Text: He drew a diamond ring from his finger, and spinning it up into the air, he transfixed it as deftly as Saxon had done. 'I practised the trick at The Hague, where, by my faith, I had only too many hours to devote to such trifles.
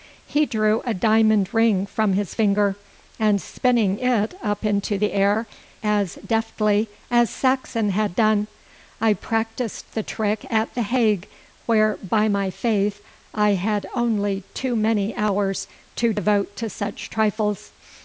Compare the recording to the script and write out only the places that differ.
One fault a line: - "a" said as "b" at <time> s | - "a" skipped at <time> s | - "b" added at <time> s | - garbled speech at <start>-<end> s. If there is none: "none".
- "he transfixed it" skipped at 5.5 s